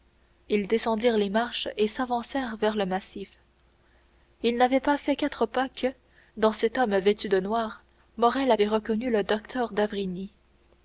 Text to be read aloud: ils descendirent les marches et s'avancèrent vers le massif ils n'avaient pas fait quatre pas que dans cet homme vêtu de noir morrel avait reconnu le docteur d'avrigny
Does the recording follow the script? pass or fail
pass